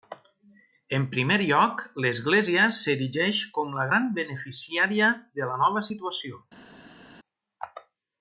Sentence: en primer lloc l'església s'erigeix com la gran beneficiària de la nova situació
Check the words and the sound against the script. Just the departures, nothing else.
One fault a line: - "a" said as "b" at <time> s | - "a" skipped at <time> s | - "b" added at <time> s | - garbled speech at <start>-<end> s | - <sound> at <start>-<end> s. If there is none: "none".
none